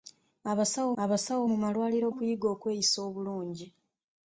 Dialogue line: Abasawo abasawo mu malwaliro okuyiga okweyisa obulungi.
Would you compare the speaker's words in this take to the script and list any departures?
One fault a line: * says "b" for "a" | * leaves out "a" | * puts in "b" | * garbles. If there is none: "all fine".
all fine